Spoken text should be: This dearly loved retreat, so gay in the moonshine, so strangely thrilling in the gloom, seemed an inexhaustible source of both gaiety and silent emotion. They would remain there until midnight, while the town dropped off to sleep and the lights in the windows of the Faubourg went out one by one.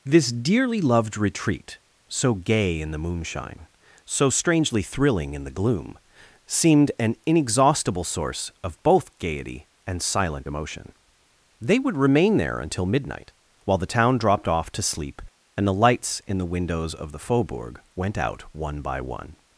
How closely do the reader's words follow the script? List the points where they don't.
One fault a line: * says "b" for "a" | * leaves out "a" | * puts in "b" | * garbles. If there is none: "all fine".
all fine